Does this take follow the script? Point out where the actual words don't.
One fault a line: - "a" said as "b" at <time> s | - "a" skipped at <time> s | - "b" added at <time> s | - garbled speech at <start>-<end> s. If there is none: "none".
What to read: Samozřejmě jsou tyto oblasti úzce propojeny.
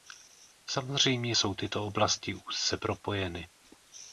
none